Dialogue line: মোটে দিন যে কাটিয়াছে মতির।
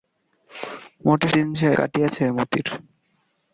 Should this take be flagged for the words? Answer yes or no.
no